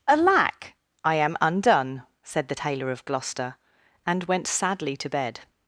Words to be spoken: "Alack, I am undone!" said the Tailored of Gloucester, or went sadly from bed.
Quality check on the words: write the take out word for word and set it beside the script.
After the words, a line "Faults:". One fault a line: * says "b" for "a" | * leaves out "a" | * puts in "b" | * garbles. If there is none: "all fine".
"Alack, I am undone!" said the Tailor of Gloucester, and went sadly to bed.
Faults:
* says "Tailor" for "Tailored"
* says "and" for "or"
* says "to" for "from"